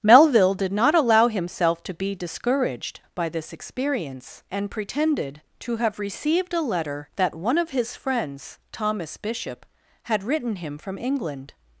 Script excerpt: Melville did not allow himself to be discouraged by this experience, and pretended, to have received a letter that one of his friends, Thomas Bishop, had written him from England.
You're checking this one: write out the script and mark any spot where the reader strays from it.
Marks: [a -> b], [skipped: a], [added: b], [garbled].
Melville did not allow himself to be discouraged by this experience, and pretended, to have received a letter that one of his friends, Thomas Bishop, had written him from England.